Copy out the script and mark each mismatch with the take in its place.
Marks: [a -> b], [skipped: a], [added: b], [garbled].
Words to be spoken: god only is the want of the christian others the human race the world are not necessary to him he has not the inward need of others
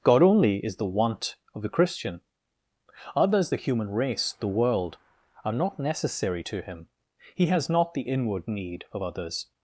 god only is the want of the christian others the human race the world are not necessary to him he has not the inward need of others